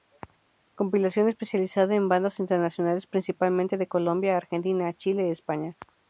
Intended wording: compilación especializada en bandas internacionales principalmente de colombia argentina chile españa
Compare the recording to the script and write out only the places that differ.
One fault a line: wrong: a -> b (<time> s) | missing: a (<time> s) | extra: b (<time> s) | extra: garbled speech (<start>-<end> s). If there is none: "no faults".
no faults